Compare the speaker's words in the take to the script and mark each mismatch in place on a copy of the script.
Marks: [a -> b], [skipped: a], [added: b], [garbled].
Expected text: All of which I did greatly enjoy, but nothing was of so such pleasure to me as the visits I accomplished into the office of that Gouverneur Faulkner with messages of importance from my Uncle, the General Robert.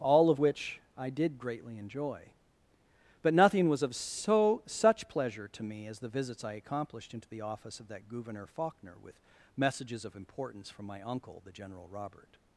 All of which I did greatly enjoy, but nothing was of so such pleasure to me as the visits I accomplished into the office of that Gouverneur Faulkner with messages of importance from my Uncle, the General Robert.